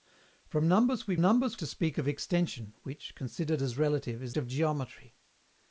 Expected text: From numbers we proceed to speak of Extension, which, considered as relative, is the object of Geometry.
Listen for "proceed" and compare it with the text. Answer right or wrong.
wrong